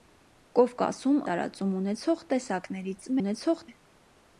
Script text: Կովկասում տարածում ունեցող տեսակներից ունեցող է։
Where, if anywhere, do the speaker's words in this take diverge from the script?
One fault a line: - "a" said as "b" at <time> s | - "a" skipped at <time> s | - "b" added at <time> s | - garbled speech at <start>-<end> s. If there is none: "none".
none